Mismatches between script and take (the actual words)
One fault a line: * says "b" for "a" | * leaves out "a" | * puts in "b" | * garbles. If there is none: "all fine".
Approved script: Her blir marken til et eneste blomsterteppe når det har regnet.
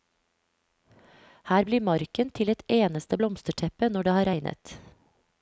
all fine